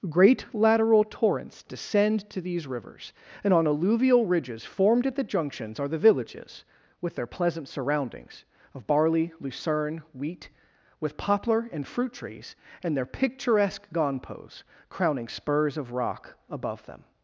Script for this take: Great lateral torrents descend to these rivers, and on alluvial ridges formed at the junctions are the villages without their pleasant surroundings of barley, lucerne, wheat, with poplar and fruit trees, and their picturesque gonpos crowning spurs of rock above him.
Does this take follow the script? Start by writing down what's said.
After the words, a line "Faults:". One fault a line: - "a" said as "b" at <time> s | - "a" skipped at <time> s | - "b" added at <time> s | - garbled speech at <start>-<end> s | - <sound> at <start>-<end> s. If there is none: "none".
Great lateral torrents descend to these rivers, and on alluvial ridges formed at the junctions are the villages with their pleasant surroundings of barley, lucerne, wheat, with poplar and fruit trees, and their picturesque gonpos crowning spurs of rock above them.
Faults:
- "without" said as "with" at 7.0 s
- "him" said as "them" at 16.9 s